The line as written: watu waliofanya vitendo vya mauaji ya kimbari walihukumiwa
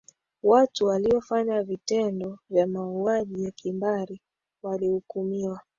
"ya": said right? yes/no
yes